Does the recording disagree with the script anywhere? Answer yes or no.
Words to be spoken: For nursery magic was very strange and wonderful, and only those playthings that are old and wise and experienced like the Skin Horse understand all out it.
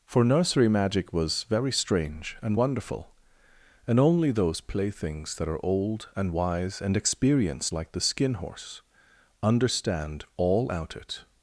no